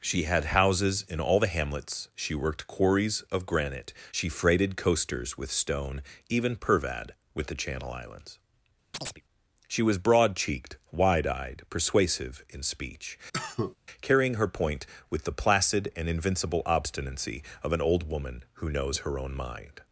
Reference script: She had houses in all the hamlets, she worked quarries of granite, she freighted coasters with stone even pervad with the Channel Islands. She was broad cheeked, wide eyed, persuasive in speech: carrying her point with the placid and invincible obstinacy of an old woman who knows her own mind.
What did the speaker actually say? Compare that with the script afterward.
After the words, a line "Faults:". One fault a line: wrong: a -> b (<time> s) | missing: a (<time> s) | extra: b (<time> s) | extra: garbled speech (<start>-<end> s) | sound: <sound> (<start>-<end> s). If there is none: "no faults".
She had houses in all the hamlets, she worked quarries of granite, she freighted coasters with stone even pervad with the Channel Islands. She was broad cheeked, wide eyed, persuasive in speech: carrying her point with the placid and invincible obstinacy of an old woman who knows her own mind.
Faults:
sound: chirp (8.9-9.2 s)
sound: cough (13.3-13.8 s)